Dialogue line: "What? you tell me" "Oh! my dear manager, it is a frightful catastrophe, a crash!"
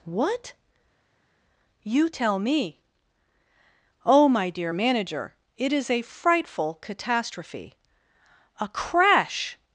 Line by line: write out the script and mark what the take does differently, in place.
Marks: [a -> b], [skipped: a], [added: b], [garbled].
"What? you tell me" "Oh! my dear manager, it is a frightful catastrophe, a crash!"